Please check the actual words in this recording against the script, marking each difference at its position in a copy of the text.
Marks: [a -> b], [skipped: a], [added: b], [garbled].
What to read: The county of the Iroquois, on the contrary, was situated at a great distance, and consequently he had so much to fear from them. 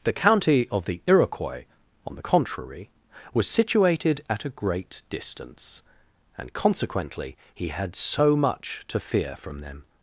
The county of the Iroquois, on the contrary, was situated at a great distance, and consequently he had so much to fear from them.